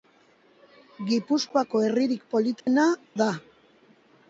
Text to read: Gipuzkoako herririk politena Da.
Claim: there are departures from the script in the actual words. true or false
false